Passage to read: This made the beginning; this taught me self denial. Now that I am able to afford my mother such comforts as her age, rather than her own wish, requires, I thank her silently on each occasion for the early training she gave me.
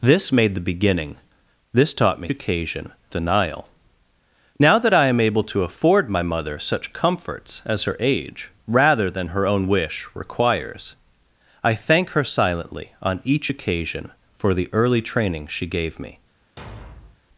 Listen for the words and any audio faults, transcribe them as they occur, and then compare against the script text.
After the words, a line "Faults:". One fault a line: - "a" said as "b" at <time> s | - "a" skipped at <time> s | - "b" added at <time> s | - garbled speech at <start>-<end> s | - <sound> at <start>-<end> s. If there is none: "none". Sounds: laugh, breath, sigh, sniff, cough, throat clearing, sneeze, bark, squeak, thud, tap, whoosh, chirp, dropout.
This made the beginning; this taught me occasion denial. Now that I am able to afford my mother such comforts as her age, rather than her own wish, requires, I thank her silently on each occasion for the early training she gave me.
Faults:
- "self" said as "occasion" at 2.3 s
- thud at 16.6-17.2 s